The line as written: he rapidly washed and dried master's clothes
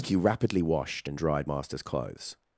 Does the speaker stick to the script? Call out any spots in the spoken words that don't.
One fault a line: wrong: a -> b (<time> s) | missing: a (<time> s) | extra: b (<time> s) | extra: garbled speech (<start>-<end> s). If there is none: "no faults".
no faults